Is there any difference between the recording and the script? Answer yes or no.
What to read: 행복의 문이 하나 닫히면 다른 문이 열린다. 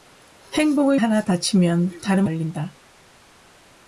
yes